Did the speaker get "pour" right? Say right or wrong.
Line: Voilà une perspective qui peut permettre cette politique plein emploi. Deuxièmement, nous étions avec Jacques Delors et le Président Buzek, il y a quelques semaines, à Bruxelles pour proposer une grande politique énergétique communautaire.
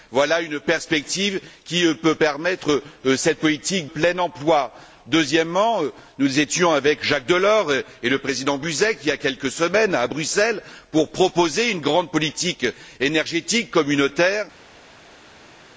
right